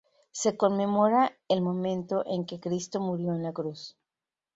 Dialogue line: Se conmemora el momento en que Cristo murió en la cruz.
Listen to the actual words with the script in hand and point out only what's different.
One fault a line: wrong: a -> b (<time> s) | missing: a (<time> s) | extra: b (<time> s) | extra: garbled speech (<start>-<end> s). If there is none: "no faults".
no faults